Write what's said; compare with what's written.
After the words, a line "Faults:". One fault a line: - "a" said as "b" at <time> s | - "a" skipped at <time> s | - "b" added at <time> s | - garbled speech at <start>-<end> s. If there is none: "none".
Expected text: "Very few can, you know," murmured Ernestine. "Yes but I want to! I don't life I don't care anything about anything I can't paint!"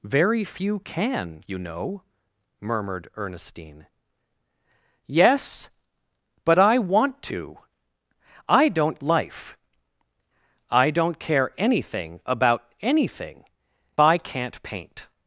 "Very few can, you know," murmured Ernestine. "Yes but I want to! I don't life I don't care anything about anything I can't paint!"
Faults:
none